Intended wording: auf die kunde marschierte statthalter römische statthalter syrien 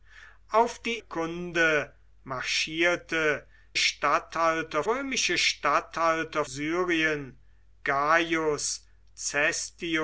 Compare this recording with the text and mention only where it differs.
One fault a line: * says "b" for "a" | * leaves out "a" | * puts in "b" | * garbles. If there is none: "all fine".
all fine